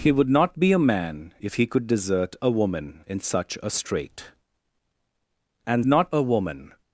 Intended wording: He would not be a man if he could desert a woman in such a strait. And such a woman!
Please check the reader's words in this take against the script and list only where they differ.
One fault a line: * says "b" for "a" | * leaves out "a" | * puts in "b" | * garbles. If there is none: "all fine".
* says "not" for "such"